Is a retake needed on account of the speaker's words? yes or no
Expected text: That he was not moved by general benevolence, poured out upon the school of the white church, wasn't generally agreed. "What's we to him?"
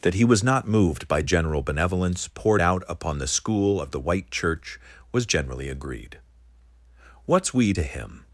yes